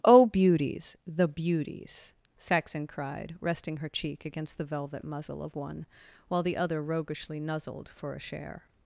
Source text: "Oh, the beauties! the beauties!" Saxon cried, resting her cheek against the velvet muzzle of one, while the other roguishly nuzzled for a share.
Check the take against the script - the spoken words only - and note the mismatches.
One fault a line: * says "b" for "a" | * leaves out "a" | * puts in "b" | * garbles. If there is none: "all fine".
* leaves out "the"